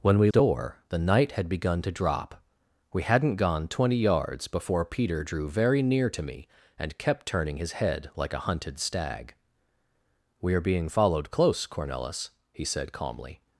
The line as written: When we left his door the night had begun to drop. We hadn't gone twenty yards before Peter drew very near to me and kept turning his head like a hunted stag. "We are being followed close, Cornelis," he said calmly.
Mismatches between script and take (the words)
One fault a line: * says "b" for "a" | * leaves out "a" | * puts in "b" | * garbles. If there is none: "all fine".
* leaves out "left his"